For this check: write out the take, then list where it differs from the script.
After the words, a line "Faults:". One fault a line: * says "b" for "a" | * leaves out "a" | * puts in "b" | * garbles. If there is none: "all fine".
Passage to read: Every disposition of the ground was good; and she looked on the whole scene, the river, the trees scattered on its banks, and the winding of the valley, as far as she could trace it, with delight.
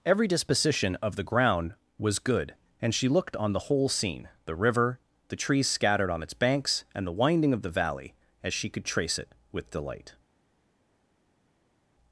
Every disposition of the ground was good; and she looked on the whole scene, the river, the trees scattered on its banks, and the winding of the valley, as she could trace it, with delight.
Faults:
* leaves out "far as"